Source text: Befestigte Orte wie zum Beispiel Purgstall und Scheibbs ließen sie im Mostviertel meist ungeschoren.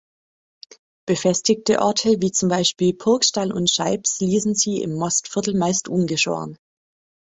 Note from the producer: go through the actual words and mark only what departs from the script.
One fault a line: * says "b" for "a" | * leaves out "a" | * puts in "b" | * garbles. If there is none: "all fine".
all fine